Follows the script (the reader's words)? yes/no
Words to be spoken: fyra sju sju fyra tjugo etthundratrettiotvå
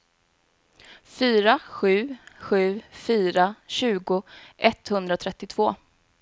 yes